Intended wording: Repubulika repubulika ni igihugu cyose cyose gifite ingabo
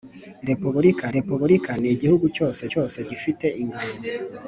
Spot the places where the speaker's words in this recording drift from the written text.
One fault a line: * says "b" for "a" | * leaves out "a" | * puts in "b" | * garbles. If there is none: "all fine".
all fine